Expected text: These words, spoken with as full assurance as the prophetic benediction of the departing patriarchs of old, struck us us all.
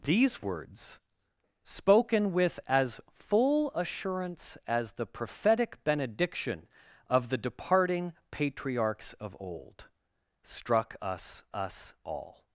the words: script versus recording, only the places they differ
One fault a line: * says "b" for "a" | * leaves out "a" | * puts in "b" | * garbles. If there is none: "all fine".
all fine